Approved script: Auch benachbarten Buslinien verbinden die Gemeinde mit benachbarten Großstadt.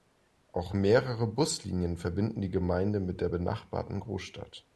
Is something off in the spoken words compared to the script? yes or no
yes